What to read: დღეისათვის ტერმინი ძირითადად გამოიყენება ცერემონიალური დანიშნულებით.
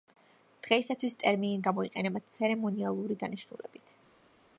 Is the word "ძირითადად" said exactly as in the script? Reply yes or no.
no